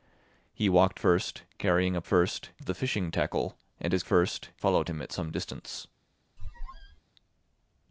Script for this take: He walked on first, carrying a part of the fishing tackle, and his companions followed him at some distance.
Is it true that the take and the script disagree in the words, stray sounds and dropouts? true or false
true